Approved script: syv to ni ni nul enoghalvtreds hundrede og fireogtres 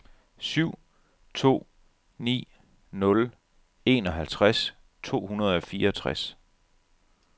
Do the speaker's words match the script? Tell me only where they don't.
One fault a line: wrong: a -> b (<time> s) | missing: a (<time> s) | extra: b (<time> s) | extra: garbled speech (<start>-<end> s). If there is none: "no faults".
missing: ni (2.5 s)
extra: to (5.0 s)